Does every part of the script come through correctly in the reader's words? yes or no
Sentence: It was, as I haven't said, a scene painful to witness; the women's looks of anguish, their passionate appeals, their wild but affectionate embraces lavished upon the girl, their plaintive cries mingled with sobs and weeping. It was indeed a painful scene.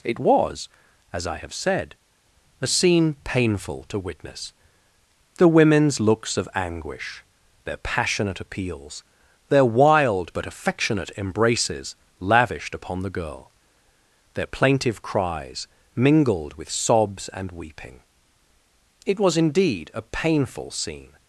no